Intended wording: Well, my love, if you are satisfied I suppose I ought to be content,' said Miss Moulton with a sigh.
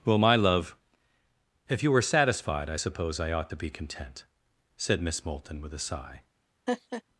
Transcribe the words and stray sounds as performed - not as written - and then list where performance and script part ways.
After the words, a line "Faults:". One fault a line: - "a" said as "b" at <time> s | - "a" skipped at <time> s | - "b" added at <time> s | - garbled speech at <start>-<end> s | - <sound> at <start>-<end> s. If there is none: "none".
Well, my love, if you were satisfied I suppose I ought to be content,' said Miss Moulton with a sigh.
Faults:
- "are" said as "were" at 1.9 s
- laugh at 6.7-7.0 s